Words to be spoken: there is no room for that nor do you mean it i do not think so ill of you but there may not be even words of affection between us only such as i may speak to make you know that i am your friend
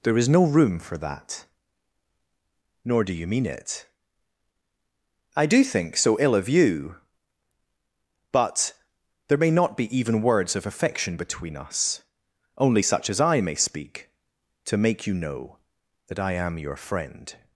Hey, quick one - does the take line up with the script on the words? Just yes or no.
no